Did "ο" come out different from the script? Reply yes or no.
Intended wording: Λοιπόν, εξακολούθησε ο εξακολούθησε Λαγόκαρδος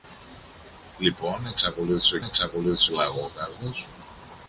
no